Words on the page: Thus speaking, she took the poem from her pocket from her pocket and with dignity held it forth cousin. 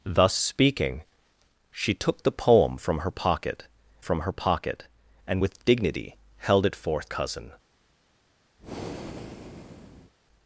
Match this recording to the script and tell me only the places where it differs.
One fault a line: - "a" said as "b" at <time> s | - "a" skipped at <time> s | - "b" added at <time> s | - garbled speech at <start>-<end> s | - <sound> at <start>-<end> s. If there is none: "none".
- breath at 8.6-10.1 s